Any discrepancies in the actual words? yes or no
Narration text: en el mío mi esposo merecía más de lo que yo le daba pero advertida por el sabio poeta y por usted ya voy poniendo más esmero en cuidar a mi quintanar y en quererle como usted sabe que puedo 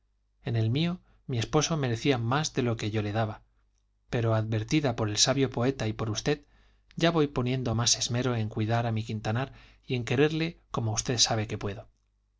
no